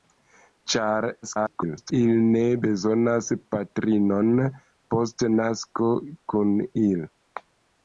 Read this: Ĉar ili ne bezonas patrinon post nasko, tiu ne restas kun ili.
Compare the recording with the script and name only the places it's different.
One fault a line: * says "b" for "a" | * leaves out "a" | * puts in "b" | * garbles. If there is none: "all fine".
* garbles
* leaves out "tiu ne restas"